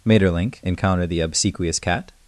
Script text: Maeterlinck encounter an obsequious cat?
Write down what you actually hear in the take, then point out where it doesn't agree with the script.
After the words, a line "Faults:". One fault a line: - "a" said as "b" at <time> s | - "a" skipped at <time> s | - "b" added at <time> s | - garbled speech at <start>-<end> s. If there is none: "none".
Maeterlinck encounter the obsequious cat?
Faults:
- "an" said as "the" at 1.1 s